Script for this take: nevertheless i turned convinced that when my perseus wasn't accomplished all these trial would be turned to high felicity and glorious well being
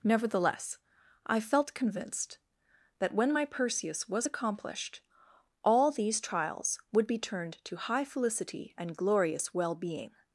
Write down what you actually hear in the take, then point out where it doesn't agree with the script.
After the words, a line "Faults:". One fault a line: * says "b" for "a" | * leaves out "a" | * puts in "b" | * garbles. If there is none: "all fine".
nevertheless i felt convinced that when my perseus was accomplished all these trials would be turned to high felicity and glorious well being
Faults:
* says "felt" for "turned"
* says "was" for "wasn't"
* says "trials" for "trial"